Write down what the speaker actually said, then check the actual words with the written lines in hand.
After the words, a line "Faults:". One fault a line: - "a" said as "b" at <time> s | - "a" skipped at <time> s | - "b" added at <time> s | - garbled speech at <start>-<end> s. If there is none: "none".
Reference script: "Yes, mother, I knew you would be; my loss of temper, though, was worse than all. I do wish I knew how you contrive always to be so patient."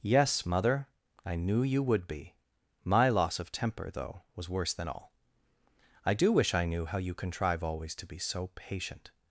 "Yes, mother, I knew you would be; my loss of temper, though, was worse than all. I do wish I knew how you contrive always to be so patient."
Faults:
none